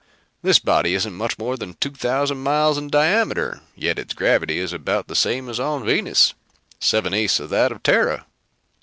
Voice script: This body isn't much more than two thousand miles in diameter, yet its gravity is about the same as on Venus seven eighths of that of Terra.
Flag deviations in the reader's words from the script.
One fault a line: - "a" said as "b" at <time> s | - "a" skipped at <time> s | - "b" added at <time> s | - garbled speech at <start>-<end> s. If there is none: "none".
none